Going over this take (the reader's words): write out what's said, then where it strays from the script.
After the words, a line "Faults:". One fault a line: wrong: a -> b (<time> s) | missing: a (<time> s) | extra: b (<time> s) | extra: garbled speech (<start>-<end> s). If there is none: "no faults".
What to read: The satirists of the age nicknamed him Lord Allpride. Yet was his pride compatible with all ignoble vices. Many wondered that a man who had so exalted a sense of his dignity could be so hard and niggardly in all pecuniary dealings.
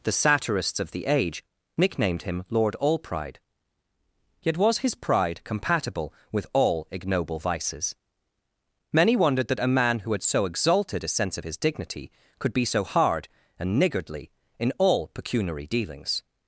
The satirists of the age nicknamed him Lord Allpride. Yet was his pride compatible with all ignoble vices. Many wondered that a man who had so exalted a sense of his dignity could be so hard and niggardly in all pecuniary dealings.
Faults:
no faults